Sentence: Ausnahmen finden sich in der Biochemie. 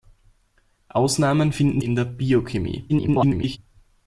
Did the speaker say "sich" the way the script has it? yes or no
no